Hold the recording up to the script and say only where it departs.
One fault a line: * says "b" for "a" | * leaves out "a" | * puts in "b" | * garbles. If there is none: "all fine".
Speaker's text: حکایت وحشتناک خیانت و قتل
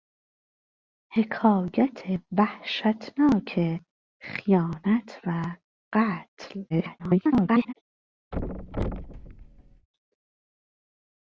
* garbles